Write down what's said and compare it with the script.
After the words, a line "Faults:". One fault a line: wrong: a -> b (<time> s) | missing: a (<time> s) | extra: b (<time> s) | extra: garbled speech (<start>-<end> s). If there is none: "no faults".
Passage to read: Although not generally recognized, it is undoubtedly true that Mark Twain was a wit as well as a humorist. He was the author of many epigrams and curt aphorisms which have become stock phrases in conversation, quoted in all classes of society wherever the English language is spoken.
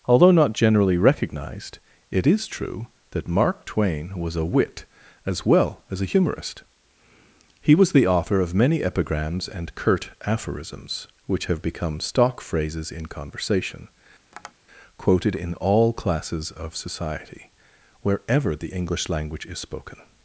Although not generally recognized, it is true that Mark Twain was a wit as well as a humorist. He was the author of many epigrams and curt aphorisms which have become stock phrases in conversation, quoted in all classes of society wherever the English language is spoken.
Faults:
missing: undoubtedly (2.5 s)